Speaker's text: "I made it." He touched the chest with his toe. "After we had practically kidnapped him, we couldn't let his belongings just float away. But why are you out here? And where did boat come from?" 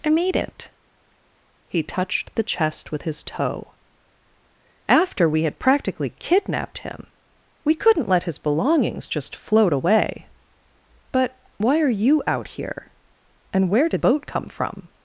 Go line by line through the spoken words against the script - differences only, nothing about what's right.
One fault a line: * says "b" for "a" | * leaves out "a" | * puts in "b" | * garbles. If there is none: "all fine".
all fine